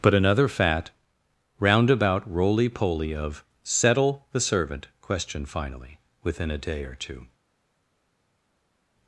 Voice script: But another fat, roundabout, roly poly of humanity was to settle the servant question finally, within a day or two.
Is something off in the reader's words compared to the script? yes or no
yes